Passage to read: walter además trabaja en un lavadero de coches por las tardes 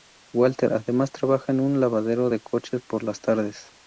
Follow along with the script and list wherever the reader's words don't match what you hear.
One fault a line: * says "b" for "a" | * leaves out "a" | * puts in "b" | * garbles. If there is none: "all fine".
all fine